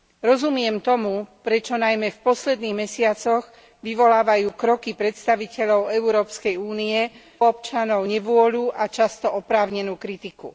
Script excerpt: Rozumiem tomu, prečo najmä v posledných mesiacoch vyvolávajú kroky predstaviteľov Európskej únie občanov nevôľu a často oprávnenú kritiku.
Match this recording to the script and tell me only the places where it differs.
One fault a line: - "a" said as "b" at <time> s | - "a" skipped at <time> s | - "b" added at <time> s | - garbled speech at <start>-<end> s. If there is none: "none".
none